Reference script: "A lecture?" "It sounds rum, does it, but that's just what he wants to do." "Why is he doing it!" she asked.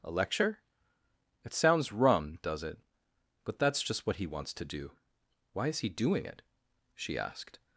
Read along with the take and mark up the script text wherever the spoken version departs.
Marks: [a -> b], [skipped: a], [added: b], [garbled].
"A lecture?" "It sounds rum, does it, but that's just what he wants to do." "Why is he doing it!" she asked.